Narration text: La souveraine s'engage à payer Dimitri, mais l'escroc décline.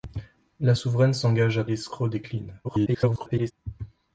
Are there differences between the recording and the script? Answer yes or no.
yes